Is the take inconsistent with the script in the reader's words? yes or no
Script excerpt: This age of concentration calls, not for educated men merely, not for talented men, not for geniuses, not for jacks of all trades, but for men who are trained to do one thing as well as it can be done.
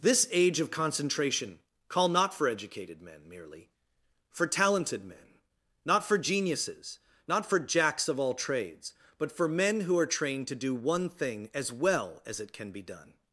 yes